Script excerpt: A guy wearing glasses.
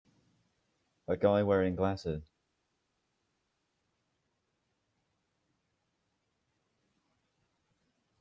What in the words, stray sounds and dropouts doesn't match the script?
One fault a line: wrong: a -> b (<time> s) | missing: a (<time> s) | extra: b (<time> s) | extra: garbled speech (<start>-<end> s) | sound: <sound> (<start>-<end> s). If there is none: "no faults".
no faults